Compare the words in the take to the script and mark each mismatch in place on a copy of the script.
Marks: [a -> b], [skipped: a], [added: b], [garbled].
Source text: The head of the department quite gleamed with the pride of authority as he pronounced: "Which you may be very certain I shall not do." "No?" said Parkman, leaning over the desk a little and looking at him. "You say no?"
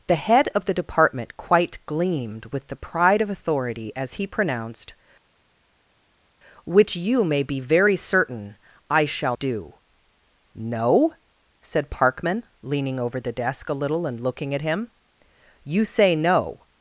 The head of the department quite gleamed with the pride of authority as he pronounced: "Which you may be very certain I shall [skipped: not] do." "No?" said Parkman, leaning over the desk a little and looking at him. "You say no?"